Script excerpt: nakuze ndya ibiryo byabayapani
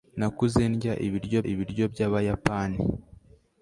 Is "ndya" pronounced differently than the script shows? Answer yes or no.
no